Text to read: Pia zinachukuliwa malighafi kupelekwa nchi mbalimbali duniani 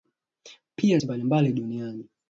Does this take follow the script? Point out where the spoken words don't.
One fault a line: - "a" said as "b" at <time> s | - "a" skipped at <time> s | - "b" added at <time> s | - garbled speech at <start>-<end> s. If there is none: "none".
- "zinachukuliwa malighafi kupelekwa" skipped at 1.0 s